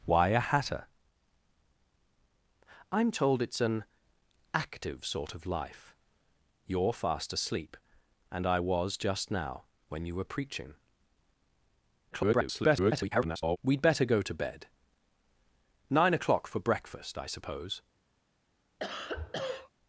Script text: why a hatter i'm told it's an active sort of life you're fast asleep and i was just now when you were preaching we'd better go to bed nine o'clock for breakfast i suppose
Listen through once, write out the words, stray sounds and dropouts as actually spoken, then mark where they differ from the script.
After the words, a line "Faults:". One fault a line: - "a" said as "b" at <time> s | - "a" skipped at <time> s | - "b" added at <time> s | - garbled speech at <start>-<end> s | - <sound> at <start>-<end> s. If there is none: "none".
why a hatter i'm told it's an active sort of life you're fast asleep and i was just now when you were preaching [garbled] we'd better go to bed nine o'clock for breakfast i suppose
Faults:
- garbled speech at 12.1-13.6 s
- cough at 18.8-19.7 s